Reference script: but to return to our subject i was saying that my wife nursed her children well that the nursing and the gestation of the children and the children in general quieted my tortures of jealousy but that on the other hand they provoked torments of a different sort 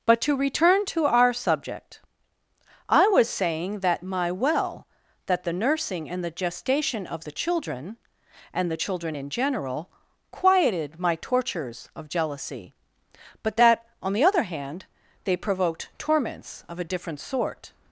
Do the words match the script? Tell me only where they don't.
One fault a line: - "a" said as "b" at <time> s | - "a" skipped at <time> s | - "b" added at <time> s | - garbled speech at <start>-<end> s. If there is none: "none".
- "wife nursed her children" skipped at 4.3 s